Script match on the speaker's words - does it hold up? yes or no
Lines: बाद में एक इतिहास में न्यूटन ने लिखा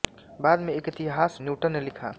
no